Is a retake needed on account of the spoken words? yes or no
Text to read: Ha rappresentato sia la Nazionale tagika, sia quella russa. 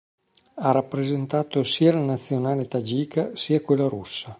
no